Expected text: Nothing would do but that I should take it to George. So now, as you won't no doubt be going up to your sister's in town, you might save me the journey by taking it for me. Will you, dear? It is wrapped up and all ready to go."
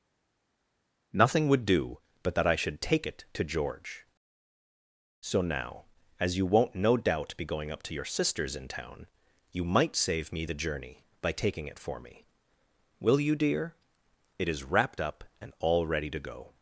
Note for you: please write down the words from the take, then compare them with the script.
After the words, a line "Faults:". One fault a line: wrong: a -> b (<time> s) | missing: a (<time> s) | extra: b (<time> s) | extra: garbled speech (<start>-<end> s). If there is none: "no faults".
Nothing would do but that I should take it to George. So now, as you won't no doubt be going up to your sister's in town, you might save me the journey by taking it for me. Will you, dear? It is wrapped up and all ready to go."
Faults:
no faults